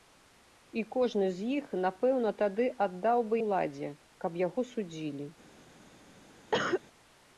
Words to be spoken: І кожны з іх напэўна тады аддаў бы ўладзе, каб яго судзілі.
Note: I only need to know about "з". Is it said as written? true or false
true